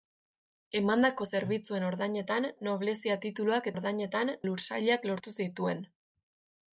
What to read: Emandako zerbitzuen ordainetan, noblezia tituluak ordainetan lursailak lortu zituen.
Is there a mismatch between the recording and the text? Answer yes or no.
no